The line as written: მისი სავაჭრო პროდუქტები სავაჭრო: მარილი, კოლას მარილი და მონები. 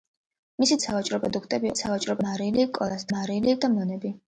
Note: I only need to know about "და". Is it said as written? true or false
true